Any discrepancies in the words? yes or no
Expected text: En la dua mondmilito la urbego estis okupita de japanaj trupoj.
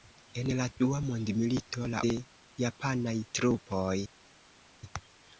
yes